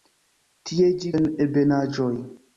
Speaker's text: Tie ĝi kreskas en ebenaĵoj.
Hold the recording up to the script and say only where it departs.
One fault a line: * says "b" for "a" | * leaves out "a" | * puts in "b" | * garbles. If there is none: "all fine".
* leaves out "kreskas"